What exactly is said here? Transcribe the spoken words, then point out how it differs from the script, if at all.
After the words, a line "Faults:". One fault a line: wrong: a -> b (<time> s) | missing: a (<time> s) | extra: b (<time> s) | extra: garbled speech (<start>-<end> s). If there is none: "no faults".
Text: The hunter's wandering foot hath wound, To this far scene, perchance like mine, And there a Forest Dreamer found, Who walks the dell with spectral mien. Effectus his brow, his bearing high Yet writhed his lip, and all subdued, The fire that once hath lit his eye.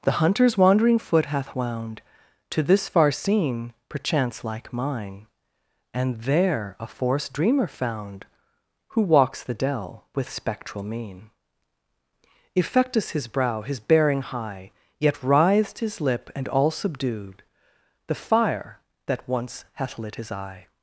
The hunter's wandering foot hath wound, To this far scene, perchance like mine, And there a Forest Dreamer found, Who walks the dell with spectral mien. Effectus his brow, his bearing high Yet writhed his lip, and all subdued, The fire that once hath lit his eye.
Faults:
no faults